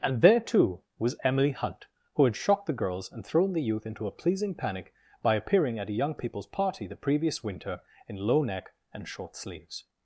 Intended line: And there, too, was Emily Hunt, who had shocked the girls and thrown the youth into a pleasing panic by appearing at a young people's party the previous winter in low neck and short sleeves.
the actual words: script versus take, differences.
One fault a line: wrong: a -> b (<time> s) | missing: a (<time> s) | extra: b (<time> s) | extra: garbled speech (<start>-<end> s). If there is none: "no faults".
no faults